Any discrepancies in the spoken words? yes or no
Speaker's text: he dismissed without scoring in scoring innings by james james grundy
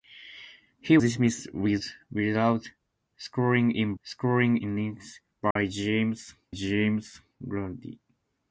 no